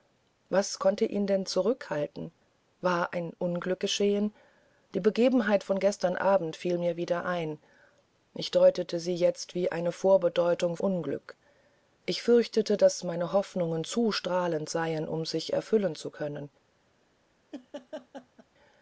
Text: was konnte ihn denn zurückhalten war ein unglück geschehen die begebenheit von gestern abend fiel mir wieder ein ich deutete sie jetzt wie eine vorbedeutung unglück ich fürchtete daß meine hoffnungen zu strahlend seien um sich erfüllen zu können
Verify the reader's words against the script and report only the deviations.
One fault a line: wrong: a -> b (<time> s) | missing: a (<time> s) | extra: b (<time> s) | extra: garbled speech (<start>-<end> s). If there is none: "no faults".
no faults